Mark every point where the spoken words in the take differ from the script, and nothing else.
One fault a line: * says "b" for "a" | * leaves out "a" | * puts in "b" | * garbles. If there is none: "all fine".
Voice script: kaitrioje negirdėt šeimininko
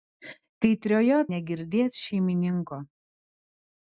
all fine